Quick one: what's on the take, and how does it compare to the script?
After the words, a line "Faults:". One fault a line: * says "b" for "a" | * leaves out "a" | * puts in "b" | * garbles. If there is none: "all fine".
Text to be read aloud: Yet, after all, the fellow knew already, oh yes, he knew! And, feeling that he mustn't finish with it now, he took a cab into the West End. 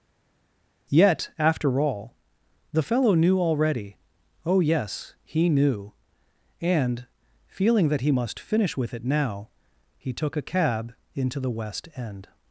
Yet, after all, the fellow knew already, oh yes, he knew! And, feeling that he must finish with it now, he took a cab into the West End.
Faults:
* says "must" for "mustn't"